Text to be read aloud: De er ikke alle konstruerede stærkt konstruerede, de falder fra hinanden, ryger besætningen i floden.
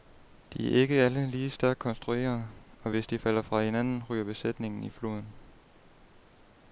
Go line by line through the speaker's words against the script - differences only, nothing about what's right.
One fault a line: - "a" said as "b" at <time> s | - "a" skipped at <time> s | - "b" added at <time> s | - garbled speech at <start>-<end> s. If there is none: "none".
- "konstruerede" said as "lige" at 1.3 s
- "og hvis" added at 2.8 s